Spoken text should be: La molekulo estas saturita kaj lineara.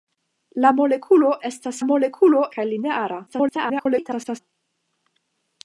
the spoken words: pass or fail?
fail